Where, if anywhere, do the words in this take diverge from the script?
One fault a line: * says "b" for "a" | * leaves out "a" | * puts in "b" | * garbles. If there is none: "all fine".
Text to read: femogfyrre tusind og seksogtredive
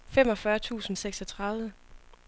all fine